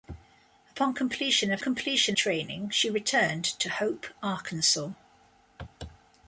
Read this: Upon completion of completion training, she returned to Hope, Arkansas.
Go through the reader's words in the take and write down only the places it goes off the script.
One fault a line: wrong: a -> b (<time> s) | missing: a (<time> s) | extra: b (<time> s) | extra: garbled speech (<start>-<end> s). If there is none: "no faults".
no faults